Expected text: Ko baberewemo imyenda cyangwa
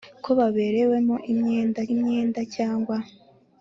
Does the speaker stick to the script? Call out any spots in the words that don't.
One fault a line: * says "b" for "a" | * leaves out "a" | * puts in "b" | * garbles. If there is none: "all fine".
* puts in "imyenda"